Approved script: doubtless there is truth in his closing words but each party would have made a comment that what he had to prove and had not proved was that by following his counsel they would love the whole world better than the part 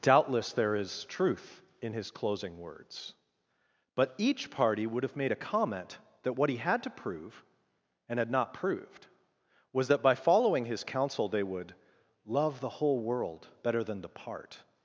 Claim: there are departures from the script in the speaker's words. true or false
false